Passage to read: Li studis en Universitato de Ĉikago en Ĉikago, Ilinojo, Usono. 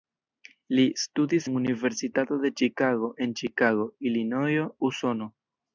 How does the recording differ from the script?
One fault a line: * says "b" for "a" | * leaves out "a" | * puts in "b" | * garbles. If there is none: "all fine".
all fine